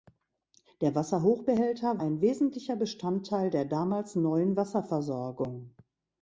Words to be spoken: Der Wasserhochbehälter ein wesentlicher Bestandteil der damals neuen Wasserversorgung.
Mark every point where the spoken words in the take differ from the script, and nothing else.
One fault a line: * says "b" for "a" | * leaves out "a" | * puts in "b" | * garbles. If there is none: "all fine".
all fine